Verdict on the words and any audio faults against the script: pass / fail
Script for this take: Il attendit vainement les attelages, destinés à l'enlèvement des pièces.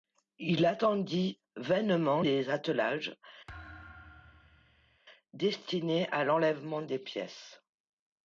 fail